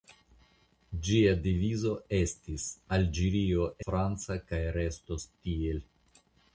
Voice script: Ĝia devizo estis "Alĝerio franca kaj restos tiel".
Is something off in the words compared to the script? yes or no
no